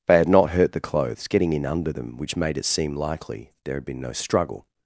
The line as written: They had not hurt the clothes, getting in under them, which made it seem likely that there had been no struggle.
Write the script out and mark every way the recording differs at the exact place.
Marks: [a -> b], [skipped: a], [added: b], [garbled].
They had not hurt the clothes, getting in under them, which made it seem likely [skipped: that] there had been no struggle.